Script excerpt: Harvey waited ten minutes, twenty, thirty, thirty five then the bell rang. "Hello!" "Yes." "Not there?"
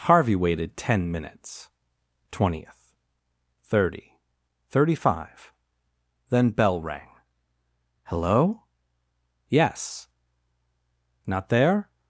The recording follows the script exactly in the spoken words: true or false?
false